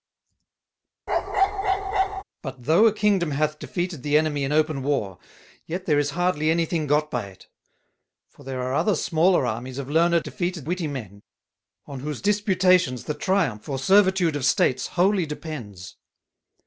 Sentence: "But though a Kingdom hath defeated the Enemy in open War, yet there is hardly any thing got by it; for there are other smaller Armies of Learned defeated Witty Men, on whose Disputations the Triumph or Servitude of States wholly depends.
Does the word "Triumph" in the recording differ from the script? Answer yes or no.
no